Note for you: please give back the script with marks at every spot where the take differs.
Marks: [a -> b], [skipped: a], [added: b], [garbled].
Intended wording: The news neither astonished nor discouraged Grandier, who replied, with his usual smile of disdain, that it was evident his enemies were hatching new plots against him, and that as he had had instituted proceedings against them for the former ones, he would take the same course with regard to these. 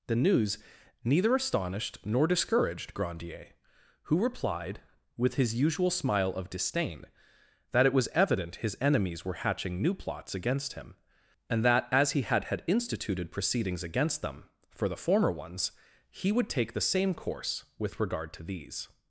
The news neither astonished nor discouraged Grandier, who replied, with his usual smile of disdain, that it was evident his enemies were hatching new plots against him, and that as he had had instituted proceedings against them for the former ones, he would take the same course with regard to these.